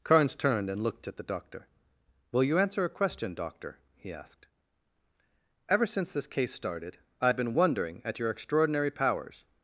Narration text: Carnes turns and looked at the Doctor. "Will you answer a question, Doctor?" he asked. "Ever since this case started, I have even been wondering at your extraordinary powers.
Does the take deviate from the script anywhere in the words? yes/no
yes